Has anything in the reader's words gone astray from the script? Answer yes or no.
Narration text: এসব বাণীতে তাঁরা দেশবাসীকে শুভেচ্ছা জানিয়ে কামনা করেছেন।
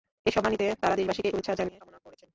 no